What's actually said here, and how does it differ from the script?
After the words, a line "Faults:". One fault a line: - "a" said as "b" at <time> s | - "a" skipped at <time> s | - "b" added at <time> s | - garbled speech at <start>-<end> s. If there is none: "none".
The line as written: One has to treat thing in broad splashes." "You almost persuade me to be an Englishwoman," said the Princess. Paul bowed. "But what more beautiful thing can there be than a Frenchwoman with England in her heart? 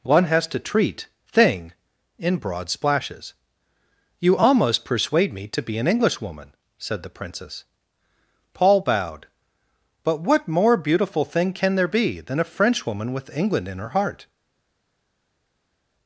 One has to treat thing in broad splashes." "You almost persuade me to be an Englishwoman," said the Princess. Paul bowed. "But what more beautiful thing can there be than a Frenchwoman with England in her heart?
Faults:
none